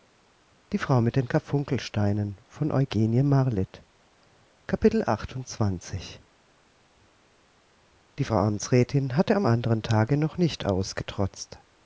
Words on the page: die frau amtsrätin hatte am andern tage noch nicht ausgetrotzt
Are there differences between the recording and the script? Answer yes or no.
no